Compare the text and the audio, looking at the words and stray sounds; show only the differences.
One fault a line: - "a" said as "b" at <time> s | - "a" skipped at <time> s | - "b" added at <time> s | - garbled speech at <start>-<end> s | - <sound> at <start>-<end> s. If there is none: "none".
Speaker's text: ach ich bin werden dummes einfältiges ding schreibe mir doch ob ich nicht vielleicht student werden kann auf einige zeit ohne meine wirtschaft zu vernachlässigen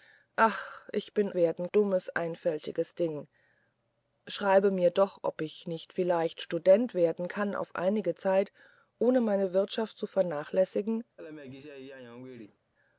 - laugh at 11.2-12.6 s